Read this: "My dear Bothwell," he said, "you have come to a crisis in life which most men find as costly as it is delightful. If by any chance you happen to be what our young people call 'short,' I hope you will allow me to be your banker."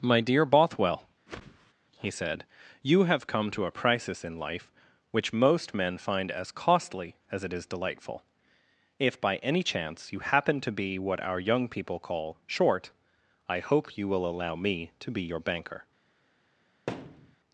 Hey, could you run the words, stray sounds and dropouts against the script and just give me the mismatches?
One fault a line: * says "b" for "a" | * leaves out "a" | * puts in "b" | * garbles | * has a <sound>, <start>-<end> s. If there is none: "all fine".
* has a whoosh, 1.3-1.7 s
* has a thud, 16.9-17.4 s